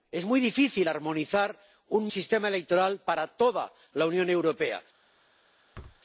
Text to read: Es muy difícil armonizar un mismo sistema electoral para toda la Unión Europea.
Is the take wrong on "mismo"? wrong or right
wrong